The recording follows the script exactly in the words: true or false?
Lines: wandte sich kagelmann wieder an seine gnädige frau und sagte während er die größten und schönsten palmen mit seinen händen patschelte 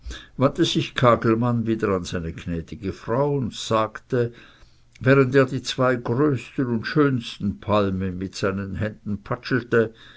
false